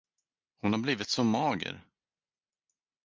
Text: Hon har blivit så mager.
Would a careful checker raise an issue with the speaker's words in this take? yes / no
no